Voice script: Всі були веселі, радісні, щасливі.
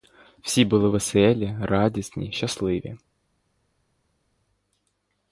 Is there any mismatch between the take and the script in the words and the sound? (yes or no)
no